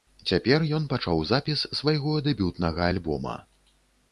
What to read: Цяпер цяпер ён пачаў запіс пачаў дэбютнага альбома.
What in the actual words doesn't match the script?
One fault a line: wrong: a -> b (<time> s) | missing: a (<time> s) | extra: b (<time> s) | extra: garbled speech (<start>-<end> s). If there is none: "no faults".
missing: цяпер (0.6 s)
wrong: пачаў -> свайго (1.8 s)